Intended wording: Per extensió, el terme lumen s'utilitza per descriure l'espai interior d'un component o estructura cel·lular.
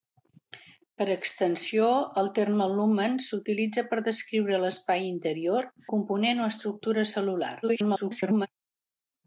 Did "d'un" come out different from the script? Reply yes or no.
yes